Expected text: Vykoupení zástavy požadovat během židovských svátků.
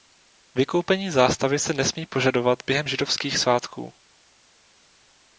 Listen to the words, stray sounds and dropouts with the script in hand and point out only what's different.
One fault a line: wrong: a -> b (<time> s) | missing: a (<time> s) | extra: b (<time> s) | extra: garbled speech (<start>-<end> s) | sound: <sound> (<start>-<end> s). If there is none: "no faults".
extra: se nesmí (1.6 s)